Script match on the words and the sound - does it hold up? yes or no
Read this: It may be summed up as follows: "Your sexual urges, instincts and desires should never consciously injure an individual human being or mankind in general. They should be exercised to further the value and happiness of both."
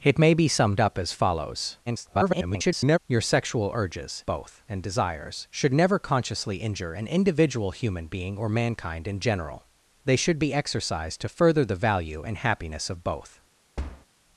no